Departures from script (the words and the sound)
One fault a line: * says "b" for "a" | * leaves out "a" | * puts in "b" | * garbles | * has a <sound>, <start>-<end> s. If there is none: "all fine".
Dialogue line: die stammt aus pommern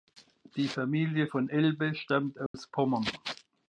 * puts in "familie von elbe"
* has a dropout, 2.5-2.5 s